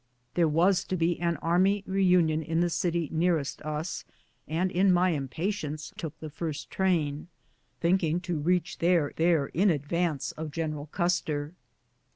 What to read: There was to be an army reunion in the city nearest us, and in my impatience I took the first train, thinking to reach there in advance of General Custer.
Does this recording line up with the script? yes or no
no